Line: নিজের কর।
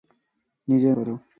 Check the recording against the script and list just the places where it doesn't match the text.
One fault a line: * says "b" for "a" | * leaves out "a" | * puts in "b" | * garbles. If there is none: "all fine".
all fine